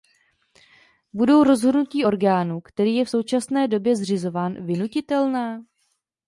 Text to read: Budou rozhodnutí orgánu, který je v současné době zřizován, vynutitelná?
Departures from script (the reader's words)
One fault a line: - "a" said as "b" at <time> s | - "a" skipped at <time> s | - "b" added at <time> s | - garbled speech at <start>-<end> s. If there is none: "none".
none